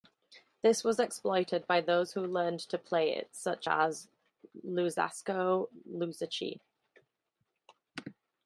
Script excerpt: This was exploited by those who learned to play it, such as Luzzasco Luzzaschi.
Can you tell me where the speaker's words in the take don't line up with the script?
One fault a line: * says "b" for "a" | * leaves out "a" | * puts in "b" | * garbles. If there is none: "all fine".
all fine